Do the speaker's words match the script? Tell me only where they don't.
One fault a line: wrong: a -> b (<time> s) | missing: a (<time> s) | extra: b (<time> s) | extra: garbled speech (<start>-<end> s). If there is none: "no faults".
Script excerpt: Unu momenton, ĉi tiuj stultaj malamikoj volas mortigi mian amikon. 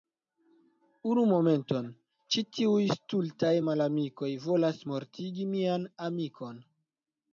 no faults